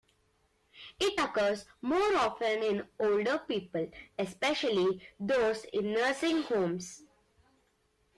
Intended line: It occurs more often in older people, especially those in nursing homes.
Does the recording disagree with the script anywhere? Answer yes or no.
no